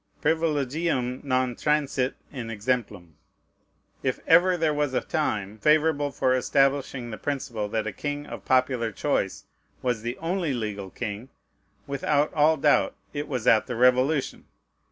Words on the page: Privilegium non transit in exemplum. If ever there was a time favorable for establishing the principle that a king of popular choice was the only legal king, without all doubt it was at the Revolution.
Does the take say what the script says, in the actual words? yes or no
yes